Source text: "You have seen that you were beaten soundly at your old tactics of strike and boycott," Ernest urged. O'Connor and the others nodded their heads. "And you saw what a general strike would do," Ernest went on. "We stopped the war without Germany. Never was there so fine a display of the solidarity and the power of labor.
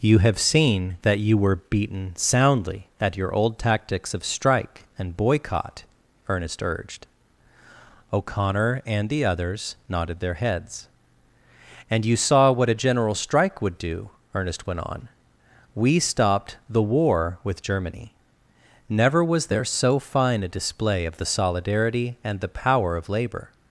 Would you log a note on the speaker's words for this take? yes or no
yes